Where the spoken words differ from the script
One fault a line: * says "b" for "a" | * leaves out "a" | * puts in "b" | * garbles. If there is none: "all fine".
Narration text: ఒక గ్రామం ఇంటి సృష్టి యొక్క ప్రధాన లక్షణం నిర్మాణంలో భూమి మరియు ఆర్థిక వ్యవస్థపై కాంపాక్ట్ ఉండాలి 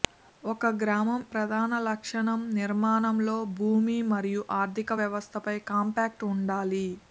* leaves out "ఇంటి సృష్టి యొక్క"